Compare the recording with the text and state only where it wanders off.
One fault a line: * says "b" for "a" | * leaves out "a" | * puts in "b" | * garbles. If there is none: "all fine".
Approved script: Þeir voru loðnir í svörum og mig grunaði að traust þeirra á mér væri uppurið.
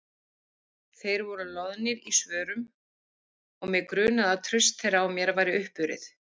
all fine